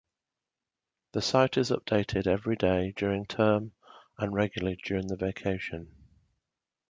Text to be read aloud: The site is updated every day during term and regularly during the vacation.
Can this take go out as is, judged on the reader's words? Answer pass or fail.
pass